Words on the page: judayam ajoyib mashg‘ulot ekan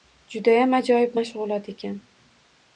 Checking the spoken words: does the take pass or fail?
pass